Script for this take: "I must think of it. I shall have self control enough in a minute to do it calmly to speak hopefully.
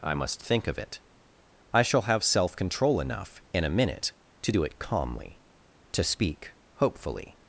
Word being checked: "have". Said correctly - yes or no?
yes